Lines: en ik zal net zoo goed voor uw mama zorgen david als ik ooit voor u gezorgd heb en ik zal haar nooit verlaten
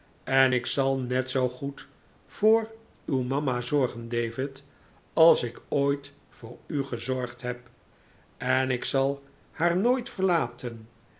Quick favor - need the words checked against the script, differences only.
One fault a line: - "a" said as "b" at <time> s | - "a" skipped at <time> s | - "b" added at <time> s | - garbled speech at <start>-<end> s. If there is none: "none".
none